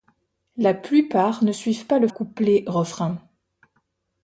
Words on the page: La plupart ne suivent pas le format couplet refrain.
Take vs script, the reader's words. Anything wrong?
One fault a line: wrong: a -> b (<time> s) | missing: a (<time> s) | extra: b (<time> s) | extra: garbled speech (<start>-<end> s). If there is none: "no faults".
missing: format (2.1 s)